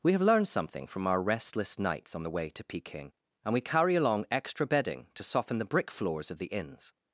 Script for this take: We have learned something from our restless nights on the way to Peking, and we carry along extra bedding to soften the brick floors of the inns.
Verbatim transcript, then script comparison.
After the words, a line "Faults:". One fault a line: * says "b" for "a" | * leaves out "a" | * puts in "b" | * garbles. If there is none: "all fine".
We have learned something from our restless nights on the way to Peking, and we carry along extra bedding to soften the brick floors of the inns.
Faults:
all fine